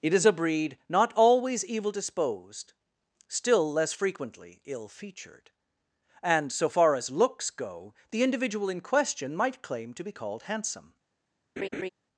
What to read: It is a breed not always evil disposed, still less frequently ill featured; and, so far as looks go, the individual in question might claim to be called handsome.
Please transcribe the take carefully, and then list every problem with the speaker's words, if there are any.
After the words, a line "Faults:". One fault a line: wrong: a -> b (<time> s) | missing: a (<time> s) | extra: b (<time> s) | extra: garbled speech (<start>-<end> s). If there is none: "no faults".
It is a breed not always evil disposed, still less frequently ill featured; and, so far as looks go, the individual in question might claim to be called handsome.
Faults:
no faults